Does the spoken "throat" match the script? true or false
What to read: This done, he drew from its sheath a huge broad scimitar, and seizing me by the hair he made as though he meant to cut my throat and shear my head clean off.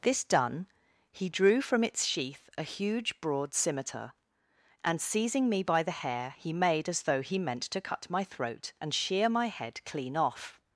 true